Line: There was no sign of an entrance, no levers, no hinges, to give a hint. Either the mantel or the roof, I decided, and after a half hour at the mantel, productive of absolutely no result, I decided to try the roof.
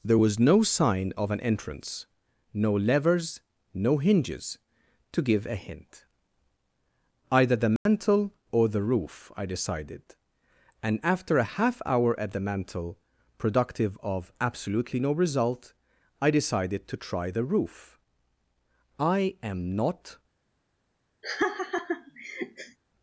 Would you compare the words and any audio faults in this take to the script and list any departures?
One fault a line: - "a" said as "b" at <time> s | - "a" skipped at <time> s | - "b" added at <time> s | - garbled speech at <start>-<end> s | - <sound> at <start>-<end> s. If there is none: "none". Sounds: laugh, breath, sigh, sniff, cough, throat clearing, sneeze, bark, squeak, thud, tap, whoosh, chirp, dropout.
- dropout at 7.8-7.9 s
- "I am not" added at 19.0 s
- laugh at 21.2-22.8 s